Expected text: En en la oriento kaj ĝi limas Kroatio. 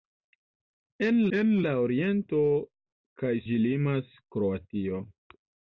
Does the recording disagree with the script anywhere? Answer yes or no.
no